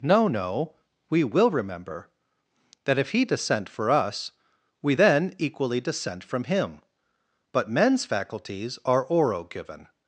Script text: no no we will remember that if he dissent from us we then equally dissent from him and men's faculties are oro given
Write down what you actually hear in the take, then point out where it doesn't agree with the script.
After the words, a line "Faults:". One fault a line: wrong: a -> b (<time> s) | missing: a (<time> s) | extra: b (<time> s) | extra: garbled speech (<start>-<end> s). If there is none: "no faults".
no no we will remember that if he dissent for us we then equally dissent from him but men's faculties are oro given
Faults:
wrong: from -> for (3.7 s)
wrong: and -> but (7.5 s)